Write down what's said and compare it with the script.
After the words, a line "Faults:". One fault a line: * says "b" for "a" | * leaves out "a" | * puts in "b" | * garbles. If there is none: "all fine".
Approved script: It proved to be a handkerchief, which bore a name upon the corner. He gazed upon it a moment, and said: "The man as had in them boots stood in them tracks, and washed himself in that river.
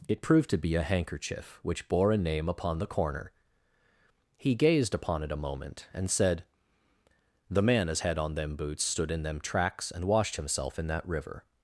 It proved to be a handkerchief, which bore a name upon the corner. He gazed upon it a moment, and said: "The man as had on them boots stood in them tracks, and washed himself in that river.
Faults:
* says "on" for "in"